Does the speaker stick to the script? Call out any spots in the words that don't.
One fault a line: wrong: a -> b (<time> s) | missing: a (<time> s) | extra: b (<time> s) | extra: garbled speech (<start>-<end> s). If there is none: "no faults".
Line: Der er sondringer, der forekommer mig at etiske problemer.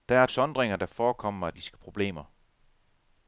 no faults